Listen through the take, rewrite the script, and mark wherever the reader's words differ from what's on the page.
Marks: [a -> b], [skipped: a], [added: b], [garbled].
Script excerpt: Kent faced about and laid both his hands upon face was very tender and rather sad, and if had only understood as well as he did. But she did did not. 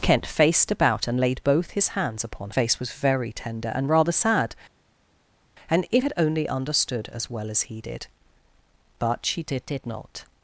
Kent faced about and laid both his hands upon face was very tender and rather sad, and if had only understood as well as he did. But she did did not.